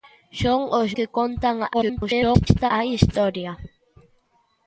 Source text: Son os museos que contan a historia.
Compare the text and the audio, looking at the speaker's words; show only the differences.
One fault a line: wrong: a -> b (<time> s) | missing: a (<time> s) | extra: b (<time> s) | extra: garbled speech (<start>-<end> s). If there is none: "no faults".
missing: museos (0.9 s)
extra: garbled speech (1.7-2.7 s)